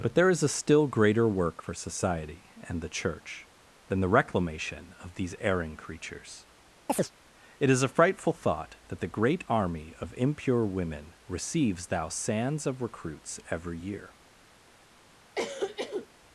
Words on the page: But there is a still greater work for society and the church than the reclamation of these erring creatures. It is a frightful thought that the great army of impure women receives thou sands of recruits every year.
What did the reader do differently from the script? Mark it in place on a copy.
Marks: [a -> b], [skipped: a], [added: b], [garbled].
But there is a still greater work for society and the church than the reclamation of these erring creatures. It is a frightful thought that the great army of impure women receives thou sands of recruits every year.